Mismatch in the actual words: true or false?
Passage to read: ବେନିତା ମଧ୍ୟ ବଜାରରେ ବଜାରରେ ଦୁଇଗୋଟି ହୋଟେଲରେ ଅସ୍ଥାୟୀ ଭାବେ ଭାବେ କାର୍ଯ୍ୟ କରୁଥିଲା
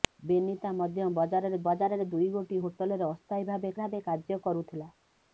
false